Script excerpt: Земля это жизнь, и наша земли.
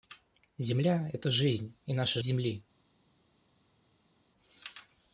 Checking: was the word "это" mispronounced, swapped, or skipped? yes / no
no